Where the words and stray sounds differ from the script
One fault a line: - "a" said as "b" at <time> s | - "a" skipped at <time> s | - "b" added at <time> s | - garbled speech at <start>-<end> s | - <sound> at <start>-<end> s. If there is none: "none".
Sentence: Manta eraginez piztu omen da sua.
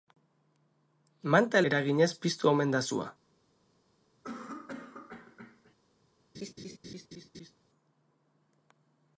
- cough at 4.2-5.8 s
- laugh at 6.3-7.5 s